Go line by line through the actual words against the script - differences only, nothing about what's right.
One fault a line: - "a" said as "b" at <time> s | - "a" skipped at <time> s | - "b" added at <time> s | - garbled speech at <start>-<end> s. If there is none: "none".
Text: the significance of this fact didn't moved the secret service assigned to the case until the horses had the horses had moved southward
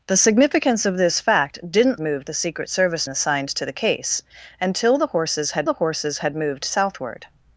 none